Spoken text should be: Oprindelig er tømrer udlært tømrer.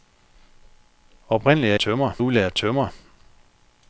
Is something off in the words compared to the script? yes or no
no